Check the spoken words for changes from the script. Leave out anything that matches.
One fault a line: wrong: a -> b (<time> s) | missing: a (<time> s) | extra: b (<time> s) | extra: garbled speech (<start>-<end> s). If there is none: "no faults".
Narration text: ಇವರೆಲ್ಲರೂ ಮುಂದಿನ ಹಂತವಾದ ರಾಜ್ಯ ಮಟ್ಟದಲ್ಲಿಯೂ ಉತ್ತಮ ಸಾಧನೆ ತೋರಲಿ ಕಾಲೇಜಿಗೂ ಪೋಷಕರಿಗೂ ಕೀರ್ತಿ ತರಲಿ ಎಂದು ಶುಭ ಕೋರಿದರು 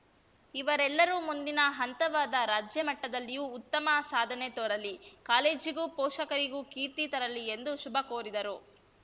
no faults